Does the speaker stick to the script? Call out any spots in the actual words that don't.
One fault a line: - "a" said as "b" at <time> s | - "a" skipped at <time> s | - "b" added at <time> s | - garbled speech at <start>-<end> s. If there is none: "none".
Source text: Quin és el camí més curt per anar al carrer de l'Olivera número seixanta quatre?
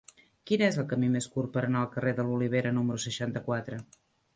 none